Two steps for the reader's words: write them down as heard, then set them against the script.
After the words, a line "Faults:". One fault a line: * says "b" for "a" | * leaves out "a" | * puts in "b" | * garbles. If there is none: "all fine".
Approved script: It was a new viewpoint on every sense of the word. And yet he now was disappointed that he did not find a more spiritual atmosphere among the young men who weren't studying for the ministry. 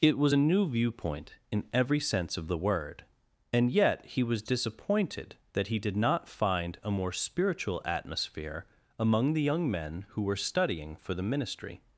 It was a new viewpoint in every sense of the word. And yet he was disappointed that he did not find a more spiritual atmosphere among the young men who were studying for the ministry.
Faults:
* says "in" for "on"
* leaves out "now"
* says "were" for "weren't"